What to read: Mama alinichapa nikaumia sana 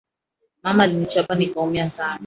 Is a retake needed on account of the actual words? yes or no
no